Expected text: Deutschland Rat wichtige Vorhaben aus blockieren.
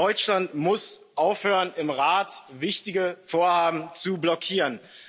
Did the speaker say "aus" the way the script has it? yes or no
no